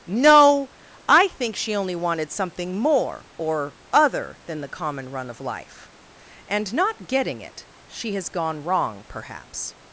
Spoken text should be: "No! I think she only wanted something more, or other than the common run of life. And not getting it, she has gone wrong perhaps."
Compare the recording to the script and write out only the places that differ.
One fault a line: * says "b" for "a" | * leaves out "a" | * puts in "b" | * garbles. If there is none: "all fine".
all fine